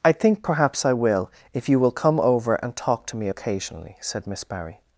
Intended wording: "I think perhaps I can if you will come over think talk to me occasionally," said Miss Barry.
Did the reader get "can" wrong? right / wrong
wrong